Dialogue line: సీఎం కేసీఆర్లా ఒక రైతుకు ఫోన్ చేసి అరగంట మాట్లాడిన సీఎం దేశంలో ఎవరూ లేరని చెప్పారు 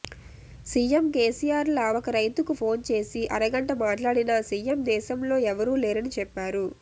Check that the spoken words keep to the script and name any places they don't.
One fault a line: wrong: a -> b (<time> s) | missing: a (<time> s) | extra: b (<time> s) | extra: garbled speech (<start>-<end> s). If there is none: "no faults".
no faults